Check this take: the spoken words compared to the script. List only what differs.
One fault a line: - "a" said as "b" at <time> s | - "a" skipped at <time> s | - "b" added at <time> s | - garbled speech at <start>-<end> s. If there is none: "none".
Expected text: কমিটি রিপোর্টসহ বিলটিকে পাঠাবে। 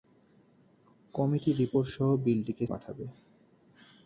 none